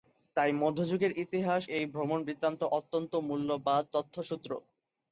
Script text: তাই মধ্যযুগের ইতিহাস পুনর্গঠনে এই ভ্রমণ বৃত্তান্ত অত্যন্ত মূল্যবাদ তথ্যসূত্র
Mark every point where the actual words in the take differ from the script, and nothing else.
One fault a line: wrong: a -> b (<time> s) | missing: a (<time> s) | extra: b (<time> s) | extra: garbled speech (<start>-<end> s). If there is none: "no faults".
missing: পুনর্গঠনে (1.6 s)